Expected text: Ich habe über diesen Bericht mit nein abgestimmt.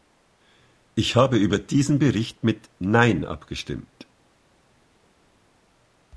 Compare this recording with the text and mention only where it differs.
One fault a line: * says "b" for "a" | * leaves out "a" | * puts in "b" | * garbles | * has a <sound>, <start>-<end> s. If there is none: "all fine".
all fine